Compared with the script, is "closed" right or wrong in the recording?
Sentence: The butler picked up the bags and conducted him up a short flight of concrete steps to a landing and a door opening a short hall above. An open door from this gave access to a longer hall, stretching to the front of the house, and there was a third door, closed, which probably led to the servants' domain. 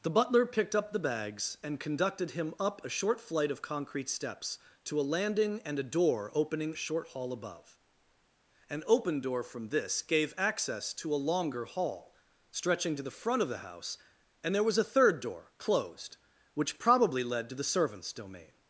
right